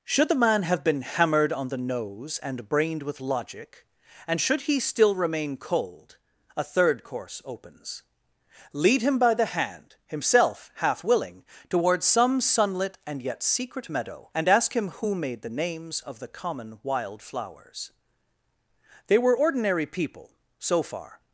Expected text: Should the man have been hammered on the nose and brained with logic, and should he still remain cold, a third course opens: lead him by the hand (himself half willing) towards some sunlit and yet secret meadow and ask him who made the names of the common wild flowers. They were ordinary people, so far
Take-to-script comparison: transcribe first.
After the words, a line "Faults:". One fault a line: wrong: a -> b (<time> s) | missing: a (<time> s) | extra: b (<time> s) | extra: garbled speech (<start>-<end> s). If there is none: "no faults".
Should the man have been hammered on the nose and brained with logic, and should he still remain cold, a third course opens: lead him by the hand (himself half willing) towards some sunlit and yet secret meadow and ask him who made the names of the common wild flowers. They were ordinary people, so far
Faults:
no faults